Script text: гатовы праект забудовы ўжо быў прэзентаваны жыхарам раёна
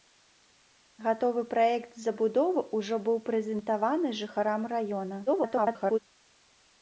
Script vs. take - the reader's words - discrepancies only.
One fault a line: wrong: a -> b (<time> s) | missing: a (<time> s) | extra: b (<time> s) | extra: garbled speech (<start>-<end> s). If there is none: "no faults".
extra: garbled speech (5.3-6.0 s)